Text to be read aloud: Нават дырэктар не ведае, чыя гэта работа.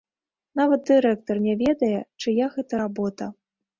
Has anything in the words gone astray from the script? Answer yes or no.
no